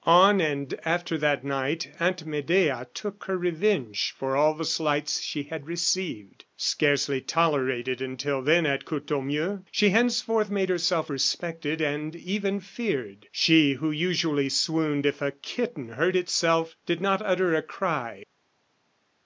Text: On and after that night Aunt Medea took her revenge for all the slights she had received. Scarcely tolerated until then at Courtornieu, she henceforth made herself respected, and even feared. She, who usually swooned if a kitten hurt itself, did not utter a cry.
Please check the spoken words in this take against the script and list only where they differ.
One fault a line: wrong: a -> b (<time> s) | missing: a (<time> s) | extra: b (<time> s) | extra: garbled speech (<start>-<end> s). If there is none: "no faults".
no faults